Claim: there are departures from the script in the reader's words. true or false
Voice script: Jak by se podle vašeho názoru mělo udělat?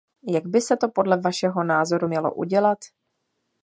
true